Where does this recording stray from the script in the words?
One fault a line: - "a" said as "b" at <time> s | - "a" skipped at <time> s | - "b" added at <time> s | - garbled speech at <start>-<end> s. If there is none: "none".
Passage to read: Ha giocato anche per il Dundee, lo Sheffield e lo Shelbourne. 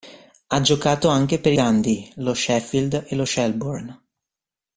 - "il" skipped at 1.5 s